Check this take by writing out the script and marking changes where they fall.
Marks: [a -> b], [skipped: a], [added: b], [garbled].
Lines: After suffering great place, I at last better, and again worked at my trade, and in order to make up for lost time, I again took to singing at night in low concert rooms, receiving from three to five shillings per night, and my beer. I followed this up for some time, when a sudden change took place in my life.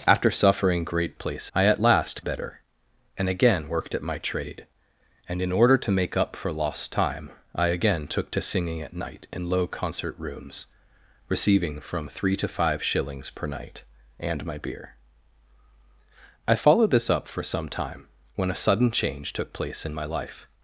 After suffering great place, I at last better, and again worked at my trade, and in order to make up for lost time, I again took to singing at night in low concert rooms, receiving from three to five shillings per night, and my beer. I followed this up for some time, when a sudden change took place in my life.